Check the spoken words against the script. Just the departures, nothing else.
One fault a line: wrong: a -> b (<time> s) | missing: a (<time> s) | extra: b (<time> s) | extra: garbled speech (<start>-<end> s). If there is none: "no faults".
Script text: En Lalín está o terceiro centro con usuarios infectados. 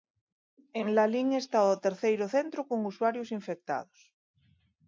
no faults